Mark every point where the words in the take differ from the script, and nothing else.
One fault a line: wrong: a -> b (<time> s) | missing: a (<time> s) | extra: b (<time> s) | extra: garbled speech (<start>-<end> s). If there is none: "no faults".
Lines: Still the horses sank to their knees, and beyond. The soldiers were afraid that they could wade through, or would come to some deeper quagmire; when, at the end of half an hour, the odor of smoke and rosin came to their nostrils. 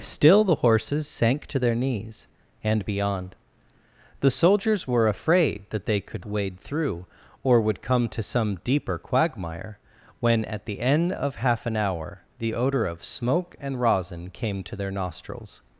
no faults